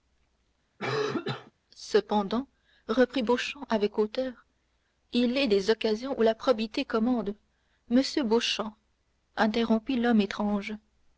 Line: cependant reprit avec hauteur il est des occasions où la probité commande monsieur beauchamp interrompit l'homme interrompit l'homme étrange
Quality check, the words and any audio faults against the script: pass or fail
fail